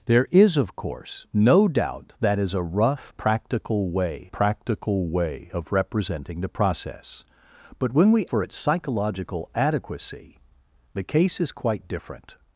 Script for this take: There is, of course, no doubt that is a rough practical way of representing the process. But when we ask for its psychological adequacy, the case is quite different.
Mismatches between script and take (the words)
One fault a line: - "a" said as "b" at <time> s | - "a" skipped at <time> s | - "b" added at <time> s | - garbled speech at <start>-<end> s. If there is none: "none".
- "practical way" added at 4.3 s
- "ask" skipped at 8.2 s